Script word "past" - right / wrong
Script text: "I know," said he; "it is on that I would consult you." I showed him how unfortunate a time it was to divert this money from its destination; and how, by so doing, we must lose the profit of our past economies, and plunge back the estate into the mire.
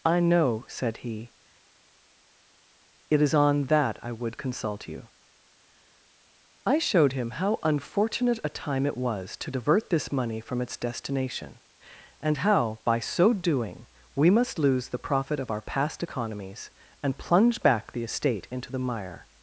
right